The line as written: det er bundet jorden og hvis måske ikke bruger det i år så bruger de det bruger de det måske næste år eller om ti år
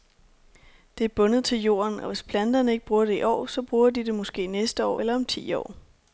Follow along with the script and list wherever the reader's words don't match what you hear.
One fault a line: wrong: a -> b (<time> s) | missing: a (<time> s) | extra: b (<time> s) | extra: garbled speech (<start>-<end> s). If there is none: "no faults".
extra: til (1.4 s)
wrong: måske -> planterne (2.2 s)
missing: bruger de det (4.2 s)